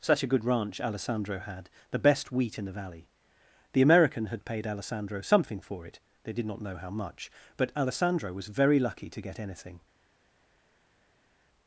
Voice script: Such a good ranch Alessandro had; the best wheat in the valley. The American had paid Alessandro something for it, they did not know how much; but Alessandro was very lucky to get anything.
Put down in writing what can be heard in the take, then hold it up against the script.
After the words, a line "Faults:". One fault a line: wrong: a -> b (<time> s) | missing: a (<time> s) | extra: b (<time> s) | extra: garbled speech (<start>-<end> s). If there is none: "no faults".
Such a good ranch Alessandro had; the best wheat in the valley. The American had paid Alessandro something for it, they did not know how much; but Alessandro was very lucky to get anything.
Faults:
no faults